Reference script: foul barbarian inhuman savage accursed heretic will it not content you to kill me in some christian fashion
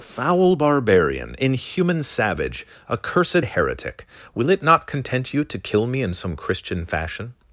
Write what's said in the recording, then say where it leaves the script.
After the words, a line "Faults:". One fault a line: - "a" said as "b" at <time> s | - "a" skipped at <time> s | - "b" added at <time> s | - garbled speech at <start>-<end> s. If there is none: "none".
foul barbarian inhuman savage accursed heretic will it not content you to kill me in some christian fashion
Faults:
none